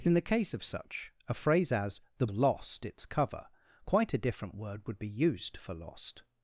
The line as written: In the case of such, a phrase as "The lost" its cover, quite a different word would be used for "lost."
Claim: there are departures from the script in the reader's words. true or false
false